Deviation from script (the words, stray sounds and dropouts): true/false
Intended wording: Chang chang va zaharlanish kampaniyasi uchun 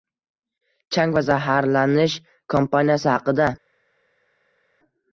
true